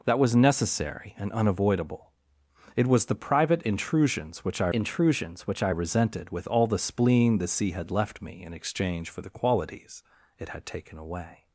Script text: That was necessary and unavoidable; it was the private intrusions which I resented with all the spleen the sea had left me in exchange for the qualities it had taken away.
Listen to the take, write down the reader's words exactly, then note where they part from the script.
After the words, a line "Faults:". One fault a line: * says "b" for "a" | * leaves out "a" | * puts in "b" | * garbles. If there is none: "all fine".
That was necessary and unavoidable; it was the private intrusions which I intrusions which I resented with all the spleen the sea had left me in exchange for the qualities it had taken away.
Faults:
* puts in "intrusions which I"